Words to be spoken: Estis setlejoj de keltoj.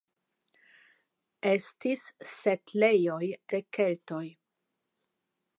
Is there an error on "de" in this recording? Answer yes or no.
no